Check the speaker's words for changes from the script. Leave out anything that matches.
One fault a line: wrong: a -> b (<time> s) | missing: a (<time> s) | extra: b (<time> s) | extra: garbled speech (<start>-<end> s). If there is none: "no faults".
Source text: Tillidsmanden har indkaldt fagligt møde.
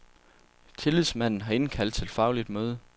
extra: til (1.9 s)